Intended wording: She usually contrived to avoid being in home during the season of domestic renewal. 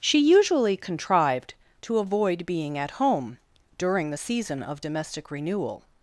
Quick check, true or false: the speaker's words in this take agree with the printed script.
false